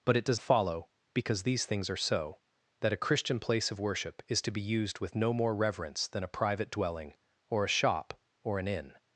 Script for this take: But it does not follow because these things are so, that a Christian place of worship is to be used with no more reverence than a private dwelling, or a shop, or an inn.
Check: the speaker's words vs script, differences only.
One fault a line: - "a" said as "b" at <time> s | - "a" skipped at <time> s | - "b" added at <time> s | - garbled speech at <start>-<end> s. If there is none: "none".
- "not" skipped at 0.4 s